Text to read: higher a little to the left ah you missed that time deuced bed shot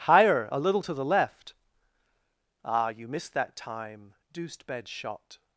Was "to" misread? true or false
false